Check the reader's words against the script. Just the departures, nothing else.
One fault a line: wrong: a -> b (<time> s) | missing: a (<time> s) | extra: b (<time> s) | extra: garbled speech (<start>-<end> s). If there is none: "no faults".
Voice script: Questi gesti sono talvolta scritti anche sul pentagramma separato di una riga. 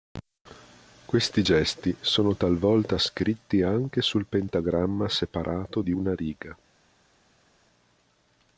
no faults